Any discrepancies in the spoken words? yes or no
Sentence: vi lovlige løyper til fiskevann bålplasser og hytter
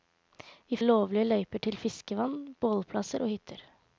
no